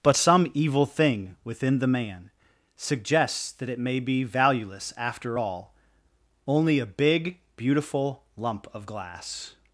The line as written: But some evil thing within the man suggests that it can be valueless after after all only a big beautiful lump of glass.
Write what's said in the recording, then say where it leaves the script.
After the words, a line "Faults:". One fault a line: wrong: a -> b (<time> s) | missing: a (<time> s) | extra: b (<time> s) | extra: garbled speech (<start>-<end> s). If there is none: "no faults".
But some evil thing within the man suggests that it may be valueless after all only a big beautiful lump of glass.
Faults:
wrong: can -> may (3.8 s)
missing: after (5.4 s)